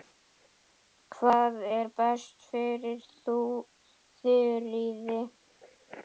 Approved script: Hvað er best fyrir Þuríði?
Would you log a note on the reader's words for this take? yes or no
no